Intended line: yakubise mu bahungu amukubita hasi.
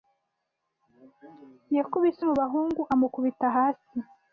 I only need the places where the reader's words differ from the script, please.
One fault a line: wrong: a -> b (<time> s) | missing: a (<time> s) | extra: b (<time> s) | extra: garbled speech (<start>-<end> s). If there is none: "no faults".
no faults